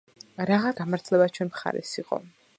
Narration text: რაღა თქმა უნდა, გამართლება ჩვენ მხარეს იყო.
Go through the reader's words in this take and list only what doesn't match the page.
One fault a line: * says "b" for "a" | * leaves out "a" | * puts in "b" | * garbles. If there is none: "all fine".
* leaves out "თქმა უნდა"